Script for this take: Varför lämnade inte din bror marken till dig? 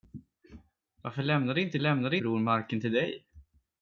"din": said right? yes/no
no